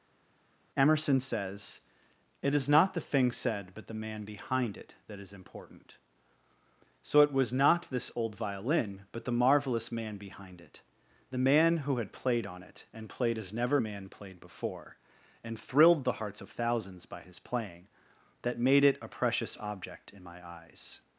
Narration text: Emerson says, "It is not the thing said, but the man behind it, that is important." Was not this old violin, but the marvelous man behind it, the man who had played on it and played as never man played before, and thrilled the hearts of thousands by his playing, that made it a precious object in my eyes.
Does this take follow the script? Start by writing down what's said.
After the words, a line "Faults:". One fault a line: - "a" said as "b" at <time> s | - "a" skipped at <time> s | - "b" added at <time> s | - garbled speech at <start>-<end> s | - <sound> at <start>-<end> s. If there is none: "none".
Emerson says, "It is not the thing said, but the man behind it, that is important." So it was not this old violin, but the marvelous man behind it, the man who had played on it and played as never man played before, and thrilled the hearts of thousands by his playing, that made it a precious object in my eyes.
Faults:
- "So it" added at 7.0 s